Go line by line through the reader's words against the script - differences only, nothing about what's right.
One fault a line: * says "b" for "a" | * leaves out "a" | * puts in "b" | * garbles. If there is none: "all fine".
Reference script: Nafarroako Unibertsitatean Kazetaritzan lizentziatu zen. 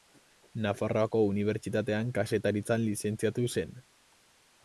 all fine